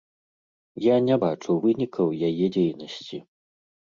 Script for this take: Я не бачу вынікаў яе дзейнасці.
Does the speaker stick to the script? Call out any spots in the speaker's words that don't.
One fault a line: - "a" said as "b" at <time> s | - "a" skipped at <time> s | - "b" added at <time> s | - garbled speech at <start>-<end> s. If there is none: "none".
none